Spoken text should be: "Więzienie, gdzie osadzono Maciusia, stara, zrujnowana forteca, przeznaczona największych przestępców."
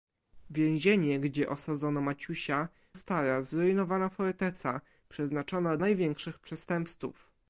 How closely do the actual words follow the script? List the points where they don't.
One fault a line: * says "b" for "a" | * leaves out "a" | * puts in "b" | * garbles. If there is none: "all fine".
all fine